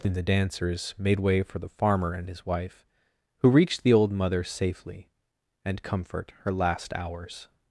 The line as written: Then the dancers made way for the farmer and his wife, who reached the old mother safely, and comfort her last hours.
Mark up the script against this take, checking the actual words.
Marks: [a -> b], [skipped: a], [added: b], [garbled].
Then the dancers made way for the farmer and his wife, who reached the old mother safely, and comfort her last hours.